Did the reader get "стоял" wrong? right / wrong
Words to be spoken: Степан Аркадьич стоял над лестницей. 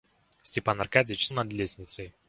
wrong